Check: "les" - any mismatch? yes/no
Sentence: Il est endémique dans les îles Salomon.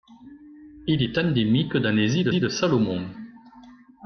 no